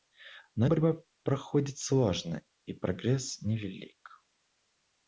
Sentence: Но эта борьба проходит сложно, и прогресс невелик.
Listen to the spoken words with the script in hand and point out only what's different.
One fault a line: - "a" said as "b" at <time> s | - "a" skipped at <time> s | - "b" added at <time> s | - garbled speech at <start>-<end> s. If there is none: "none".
- "эта" skipped at 0.7 s